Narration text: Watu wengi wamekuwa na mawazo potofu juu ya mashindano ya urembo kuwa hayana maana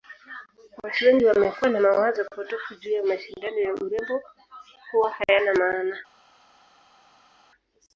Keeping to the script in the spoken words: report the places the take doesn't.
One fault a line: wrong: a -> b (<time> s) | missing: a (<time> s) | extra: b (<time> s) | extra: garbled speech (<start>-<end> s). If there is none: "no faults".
no faults